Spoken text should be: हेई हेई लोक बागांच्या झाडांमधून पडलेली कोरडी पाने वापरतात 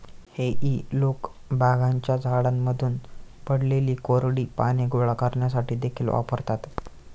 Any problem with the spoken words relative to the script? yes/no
yes